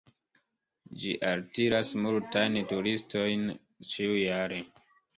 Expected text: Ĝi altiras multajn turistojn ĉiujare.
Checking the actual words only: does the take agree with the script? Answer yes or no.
yes